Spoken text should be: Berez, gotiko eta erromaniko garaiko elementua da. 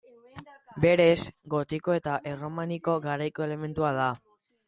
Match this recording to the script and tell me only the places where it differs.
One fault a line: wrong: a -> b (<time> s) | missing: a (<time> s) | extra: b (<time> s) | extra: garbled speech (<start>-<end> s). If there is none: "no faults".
no faults